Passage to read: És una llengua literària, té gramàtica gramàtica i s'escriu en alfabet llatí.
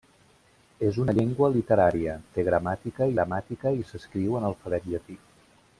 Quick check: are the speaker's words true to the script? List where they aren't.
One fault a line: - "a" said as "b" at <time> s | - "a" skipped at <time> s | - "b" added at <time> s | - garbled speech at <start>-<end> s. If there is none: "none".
none